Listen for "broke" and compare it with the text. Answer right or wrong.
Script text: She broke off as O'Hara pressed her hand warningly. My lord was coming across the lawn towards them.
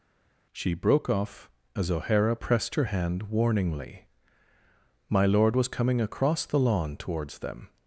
right